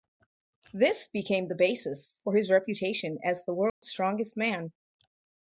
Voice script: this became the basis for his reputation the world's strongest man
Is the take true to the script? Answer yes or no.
no